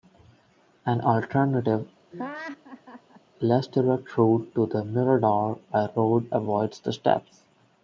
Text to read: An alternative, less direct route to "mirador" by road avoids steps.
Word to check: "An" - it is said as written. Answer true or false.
true